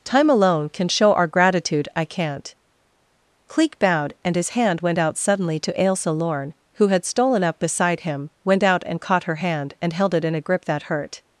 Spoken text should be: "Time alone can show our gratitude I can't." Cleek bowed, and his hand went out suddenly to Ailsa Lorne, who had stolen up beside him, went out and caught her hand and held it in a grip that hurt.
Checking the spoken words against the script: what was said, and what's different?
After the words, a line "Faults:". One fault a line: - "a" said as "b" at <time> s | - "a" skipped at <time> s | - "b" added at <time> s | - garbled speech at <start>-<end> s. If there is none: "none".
"Time alone can show our gratitude I can't." Cleek bowed, and his hand went out suddenly to Ailsa Lorne, who had stolen up beside him, went out and caught her hand and held it in a grip that hurt.
Faults:
none